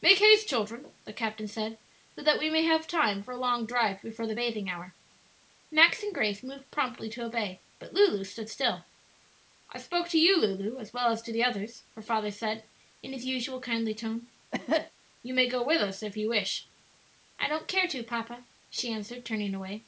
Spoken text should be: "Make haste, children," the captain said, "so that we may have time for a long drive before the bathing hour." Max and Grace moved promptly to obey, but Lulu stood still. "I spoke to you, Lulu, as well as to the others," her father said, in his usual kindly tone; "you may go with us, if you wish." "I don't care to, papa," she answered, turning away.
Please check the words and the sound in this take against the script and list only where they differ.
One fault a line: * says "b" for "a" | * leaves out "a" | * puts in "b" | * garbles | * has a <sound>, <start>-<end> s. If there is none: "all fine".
* has a cough, 14.5-14.9 s